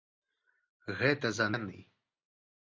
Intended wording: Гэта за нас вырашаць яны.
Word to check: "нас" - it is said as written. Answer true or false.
false